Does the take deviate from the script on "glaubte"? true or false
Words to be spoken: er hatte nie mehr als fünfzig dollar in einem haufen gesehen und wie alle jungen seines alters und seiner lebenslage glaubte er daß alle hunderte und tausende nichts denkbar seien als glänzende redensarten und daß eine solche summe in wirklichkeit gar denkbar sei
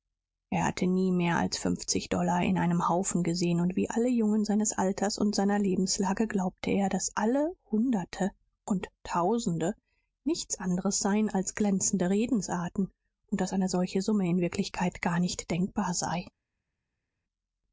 false